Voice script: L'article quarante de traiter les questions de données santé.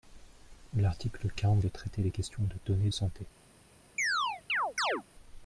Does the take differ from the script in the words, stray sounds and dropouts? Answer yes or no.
yes